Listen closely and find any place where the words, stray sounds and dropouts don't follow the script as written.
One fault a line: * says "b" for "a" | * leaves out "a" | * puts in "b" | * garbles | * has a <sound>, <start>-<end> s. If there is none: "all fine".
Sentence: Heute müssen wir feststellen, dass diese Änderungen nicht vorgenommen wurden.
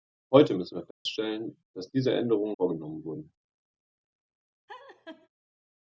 * has a dropout, 0.9-1.1 s
* leaves out "nicht"
* has a laugh, 4.7-5.3 s